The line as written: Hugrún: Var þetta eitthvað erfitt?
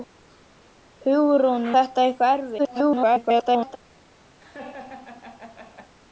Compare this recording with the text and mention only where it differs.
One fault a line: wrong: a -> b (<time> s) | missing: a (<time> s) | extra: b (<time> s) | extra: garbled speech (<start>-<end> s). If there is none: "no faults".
missing: Var (1.7 s)
extra: garbled speech (2.6-3.8 s)